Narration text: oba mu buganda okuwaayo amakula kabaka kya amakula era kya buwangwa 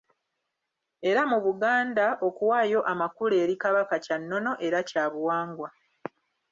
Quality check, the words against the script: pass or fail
fail